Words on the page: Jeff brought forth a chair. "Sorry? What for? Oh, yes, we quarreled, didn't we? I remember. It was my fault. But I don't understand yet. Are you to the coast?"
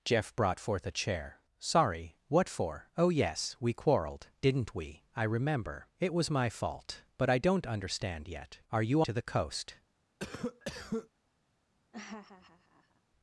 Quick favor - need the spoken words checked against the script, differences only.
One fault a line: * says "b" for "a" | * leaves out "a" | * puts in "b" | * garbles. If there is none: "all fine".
all fine